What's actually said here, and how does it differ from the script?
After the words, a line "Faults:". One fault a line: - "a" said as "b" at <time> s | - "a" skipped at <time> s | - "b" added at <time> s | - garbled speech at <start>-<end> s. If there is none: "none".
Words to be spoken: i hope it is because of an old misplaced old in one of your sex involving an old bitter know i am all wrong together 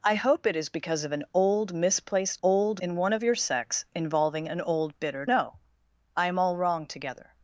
i hope it is because of an old misplaced old in one of your sex involving an old bitter know i am all wrong together
Faults:
none